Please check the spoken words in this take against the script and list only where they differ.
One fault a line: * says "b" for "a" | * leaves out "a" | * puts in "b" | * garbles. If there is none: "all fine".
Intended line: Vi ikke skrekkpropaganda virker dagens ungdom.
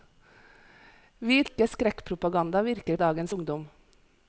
all fine